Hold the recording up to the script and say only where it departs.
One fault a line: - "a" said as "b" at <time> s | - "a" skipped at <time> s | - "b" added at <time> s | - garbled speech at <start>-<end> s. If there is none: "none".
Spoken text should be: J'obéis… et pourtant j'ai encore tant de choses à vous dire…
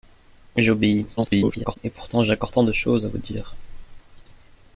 - garbled speech at 1.2-1.8 s